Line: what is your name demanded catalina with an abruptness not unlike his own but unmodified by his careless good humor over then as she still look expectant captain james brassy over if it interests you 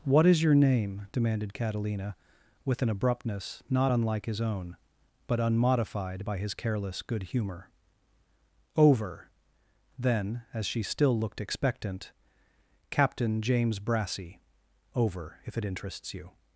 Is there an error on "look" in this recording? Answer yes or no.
yes